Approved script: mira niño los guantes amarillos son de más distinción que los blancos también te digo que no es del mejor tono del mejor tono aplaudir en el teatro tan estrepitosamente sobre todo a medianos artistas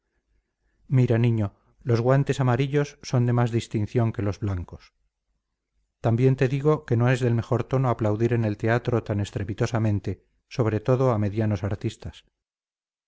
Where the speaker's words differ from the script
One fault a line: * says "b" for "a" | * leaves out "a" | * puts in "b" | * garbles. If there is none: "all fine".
* leaves out "del mejor tono"